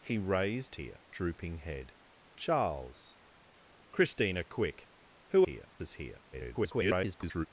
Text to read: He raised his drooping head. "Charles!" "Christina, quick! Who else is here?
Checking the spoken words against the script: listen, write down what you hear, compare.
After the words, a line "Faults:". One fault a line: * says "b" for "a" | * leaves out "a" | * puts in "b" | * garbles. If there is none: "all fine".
He raised here drooping head. "Charles!" "Christina, quick! Who here is here? [garbled]
Faults:
* says "here" for "his"
* says "here" for "else"
* garbles